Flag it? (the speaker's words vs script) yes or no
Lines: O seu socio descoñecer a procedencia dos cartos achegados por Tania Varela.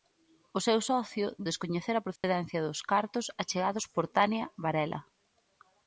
no